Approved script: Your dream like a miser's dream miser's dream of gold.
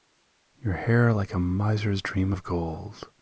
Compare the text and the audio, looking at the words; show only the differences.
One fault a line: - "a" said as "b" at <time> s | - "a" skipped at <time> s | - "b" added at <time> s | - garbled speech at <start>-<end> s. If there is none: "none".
- "dream" said as "hair" at 0.7 s
- "miser's dream" skipped at 2.3 s